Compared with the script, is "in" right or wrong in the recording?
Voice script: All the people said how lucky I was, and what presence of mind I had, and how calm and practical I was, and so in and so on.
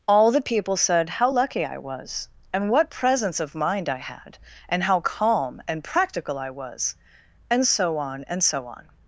wrong